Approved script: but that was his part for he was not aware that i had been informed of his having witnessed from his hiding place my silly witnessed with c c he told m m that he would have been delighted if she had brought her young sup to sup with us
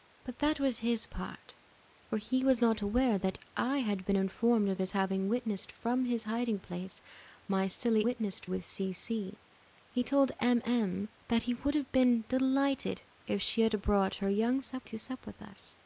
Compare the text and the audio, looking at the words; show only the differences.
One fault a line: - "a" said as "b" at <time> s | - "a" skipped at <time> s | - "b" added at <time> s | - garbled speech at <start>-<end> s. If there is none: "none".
none